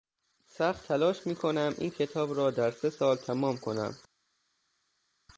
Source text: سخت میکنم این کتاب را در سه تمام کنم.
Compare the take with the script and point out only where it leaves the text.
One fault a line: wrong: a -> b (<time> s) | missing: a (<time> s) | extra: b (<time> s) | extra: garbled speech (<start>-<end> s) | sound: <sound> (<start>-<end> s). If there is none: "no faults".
extra: تلاش (0.9 s)
extra: سال (2.9 s)